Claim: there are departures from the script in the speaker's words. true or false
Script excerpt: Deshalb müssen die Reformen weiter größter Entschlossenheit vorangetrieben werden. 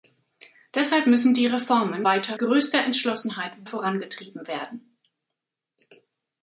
false